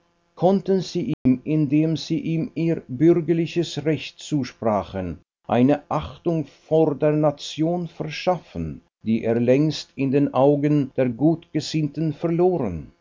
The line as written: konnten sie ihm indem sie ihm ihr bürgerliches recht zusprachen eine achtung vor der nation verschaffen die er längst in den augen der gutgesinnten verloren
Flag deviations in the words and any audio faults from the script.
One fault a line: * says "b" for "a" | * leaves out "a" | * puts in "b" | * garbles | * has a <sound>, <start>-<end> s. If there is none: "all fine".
* has a dropout, 1.1-1.3 s